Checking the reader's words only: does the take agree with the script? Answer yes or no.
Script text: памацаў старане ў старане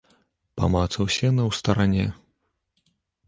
no